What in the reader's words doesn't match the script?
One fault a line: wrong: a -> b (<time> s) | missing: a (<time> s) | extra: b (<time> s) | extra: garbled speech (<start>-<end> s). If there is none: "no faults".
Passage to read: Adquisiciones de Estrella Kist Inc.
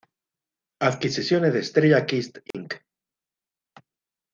no faults